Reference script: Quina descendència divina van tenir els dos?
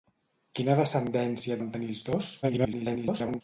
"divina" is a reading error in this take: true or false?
true